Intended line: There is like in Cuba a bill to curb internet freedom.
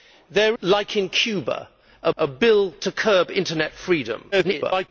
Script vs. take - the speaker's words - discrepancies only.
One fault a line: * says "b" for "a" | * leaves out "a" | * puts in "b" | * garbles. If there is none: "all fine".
* leaves out "is"
* puts in "a"
* garbles